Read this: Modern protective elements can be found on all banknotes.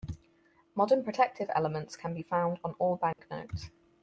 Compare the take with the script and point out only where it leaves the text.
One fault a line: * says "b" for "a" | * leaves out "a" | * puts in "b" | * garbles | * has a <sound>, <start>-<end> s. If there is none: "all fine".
* has a dropout, 3.1-3.2 s